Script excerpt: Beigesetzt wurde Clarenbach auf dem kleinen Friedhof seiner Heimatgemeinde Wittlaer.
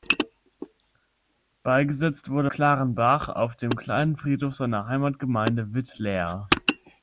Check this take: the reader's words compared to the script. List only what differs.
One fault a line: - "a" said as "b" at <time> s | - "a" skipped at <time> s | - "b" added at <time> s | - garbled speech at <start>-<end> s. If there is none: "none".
none